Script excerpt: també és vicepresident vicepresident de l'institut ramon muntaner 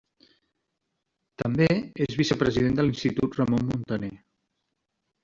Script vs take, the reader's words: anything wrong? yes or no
yes